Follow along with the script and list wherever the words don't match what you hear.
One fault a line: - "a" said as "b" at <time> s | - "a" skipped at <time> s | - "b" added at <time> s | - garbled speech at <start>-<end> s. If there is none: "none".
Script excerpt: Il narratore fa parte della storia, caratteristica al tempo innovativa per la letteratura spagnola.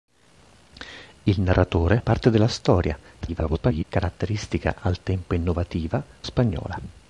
- "fa" skipped at 2.0 s
- garbled speech at 3.2-3.8 s
- "per la letteratura" skipped at 6.0 s